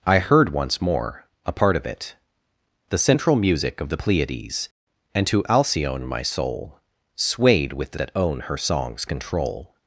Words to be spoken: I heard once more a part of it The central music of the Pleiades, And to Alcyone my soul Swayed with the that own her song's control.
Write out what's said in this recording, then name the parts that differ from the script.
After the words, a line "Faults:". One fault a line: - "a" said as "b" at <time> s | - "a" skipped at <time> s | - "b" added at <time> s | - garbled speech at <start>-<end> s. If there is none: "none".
I heard once more a part of it The central music of the Pleiades, And to Alcyone my soul Swayed with the that own her song's control.
Faults:
none